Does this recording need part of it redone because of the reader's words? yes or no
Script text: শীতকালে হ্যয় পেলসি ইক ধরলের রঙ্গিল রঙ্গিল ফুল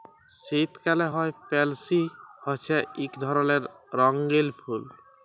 yes